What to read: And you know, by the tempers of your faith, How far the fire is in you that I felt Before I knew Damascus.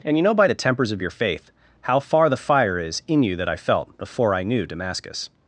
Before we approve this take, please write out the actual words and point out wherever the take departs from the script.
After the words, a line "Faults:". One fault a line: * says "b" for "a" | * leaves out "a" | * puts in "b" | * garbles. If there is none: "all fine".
And you know, by the tempers of your faith, How far the fire is in you that I felt Before I knew Damascus.
Faults:
all fine